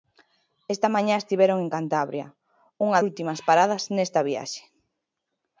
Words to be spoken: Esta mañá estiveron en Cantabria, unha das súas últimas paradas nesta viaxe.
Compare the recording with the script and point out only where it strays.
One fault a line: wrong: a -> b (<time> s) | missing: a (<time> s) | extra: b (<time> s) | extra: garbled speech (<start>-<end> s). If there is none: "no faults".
missing: das súas (3.0 s)